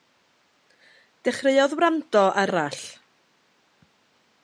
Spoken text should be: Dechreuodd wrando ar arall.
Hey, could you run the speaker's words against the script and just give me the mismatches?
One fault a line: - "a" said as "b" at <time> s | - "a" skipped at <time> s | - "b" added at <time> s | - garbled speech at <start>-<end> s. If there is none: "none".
none